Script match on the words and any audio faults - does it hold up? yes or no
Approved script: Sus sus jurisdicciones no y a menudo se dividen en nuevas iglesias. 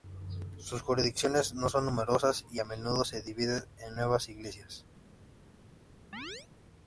no